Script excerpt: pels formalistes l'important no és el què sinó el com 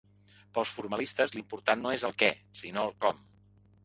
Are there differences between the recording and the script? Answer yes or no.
no